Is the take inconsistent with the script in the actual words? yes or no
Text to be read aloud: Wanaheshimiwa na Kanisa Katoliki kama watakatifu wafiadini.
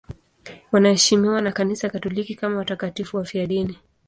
no